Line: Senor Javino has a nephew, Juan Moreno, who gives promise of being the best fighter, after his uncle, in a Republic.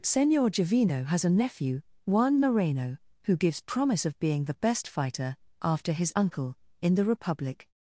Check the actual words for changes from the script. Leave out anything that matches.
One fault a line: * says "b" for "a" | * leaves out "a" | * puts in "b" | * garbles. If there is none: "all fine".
* says "the" for "a"